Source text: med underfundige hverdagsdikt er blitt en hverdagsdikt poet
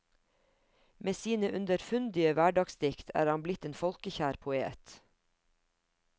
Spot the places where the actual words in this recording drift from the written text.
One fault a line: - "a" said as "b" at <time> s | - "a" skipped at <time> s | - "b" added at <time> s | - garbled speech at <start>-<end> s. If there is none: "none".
- "sine" added at 1.2 s
- "han" added at 3.3 s
- "hverdagsdikt" said as "folkekjær" at 3.8 s